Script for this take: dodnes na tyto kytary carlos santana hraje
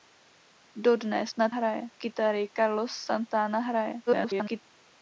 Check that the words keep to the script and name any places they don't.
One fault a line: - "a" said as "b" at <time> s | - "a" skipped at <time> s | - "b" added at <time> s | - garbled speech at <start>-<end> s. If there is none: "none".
- "tyto" said as "hraje" at 1.5 s
- garbled speech at 4.1-4.6 s